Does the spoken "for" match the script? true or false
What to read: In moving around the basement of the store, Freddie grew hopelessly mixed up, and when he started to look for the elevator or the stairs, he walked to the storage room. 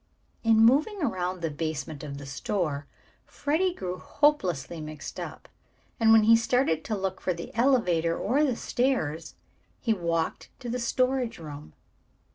true